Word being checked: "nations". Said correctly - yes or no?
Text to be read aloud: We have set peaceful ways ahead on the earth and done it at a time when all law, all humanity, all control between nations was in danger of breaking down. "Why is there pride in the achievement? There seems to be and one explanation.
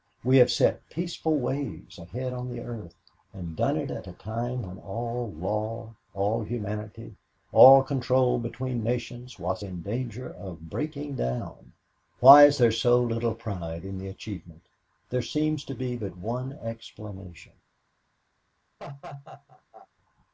yes